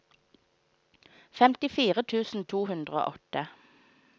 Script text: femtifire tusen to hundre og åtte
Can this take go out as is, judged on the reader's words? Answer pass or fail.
pass